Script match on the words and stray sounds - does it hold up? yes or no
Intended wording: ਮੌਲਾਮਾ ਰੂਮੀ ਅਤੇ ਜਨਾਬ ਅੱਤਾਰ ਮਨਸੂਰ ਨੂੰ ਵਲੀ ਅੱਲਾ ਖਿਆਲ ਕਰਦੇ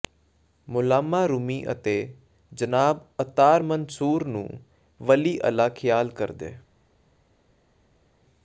yes